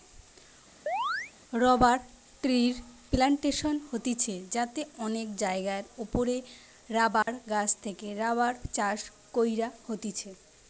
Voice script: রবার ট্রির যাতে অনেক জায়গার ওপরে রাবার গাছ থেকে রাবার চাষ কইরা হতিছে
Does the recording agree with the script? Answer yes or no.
no